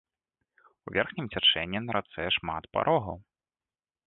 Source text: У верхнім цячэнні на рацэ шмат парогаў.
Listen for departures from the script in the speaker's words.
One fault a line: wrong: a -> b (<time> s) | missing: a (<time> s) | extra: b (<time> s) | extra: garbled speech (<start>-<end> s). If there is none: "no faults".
no faults